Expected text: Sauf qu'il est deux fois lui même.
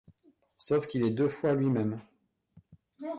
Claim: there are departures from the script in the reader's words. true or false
false